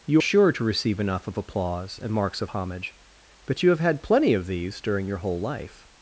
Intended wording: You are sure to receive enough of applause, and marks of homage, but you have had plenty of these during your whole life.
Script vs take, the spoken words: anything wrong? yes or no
yes